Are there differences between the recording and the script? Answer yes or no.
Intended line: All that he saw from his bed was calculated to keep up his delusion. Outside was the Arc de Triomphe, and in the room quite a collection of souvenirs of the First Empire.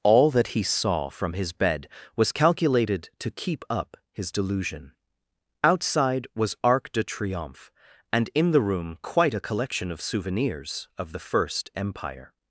yes